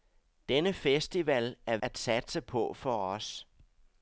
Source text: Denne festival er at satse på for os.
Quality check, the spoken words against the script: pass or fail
pass